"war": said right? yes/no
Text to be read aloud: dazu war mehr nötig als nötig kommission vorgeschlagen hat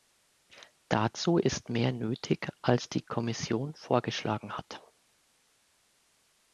no